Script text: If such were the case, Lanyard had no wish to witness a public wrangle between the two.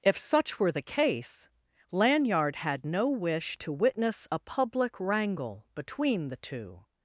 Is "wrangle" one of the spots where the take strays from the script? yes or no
no